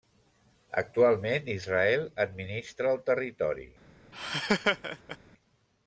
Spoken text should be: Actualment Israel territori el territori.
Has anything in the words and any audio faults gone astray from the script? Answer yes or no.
yes